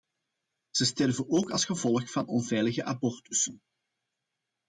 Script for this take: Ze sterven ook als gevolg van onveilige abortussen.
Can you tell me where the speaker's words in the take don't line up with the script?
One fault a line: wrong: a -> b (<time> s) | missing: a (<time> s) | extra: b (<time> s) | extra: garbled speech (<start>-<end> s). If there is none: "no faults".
no faults